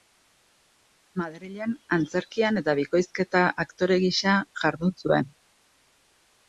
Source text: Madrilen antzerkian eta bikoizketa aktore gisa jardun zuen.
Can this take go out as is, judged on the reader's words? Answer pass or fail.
pass